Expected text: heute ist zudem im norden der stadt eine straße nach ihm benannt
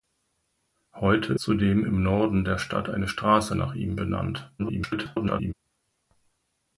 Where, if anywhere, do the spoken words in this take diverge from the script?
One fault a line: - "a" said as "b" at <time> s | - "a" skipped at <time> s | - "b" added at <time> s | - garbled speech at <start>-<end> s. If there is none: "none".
- "ist" skipped at 1.4 s
- garbled speech at 4.6-5.5 s